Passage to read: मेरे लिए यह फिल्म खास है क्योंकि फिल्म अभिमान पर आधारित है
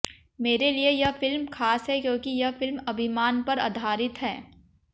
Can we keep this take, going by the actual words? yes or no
no